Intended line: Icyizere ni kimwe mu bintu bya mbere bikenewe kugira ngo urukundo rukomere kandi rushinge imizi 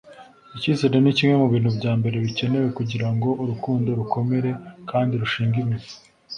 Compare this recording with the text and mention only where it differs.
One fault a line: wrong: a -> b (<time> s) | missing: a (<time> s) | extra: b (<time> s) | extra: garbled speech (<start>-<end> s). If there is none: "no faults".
no faults